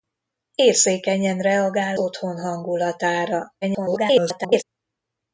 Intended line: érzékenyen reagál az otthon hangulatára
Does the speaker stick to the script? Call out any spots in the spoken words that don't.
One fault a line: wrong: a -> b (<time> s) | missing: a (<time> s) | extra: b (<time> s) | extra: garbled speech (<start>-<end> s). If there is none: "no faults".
missing: az (2.0 s)
extra: garbled speech (3.6-4.6 s)